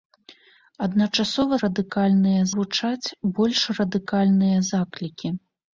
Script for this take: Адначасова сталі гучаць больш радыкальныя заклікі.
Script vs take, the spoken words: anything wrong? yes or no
yes